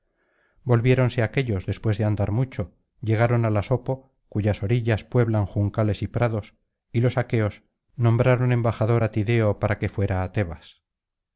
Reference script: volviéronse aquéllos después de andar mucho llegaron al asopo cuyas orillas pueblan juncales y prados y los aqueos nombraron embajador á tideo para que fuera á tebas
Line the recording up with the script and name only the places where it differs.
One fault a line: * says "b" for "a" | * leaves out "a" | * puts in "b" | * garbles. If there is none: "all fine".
all fine